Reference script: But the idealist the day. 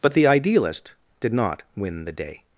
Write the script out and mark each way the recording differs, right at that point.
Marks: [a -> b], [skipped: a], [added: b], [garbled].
But the idealist [added: did not win] the day.